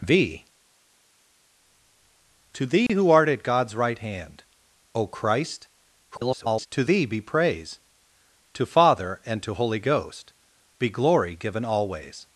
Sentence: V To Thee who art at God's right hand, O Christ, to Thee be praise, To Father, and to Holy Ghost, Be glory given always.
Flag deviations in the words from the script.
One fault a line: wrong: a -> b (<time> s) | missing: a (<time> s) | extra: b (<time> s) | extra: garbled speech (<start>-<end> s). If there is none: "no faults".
extra: garbled speech (6.1-6.7 s)